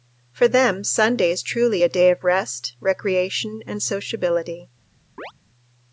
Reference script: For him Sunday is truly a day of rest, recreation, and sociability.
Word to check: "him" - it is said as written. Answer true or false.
false